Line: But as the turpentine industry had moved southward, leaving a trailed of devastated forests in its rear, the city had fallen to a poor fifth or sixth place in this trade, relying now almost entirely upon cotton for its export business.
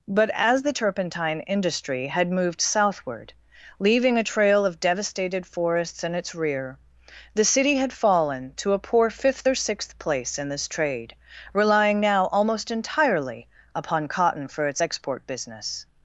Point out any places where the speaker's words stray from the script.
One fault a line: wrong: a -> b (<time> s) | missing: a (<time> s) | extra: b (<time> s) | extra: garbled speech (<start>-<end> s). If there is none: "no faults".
wrong: trailed -> trail (4.2 s)